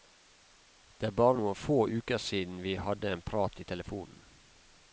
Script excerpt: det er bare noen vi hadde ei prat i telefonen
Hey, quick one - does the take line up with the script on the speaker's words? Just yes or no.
no